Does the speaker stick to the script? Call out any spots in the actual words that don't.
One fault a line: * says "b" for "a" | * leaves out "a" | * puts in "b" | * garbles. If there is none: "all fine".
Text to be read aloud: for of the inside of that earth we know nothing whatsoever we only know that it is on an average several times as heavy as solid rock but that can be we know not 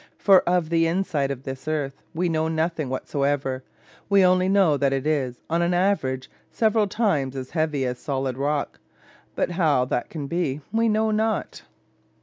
* says "this" for "that"
* puts in "how"